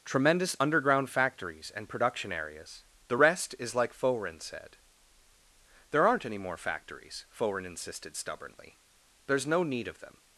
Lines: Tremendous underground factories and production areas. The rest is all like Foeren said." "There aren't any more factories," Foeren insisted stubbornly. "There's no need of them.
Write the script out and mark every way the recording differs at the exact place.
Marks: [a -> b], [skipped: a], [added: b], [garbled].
Tremendous underground factories and production areas. The rest is [skipped: all] like Foeren said." "There aren't any more factories," Foeren insisted stubbornly. "There's no need of them.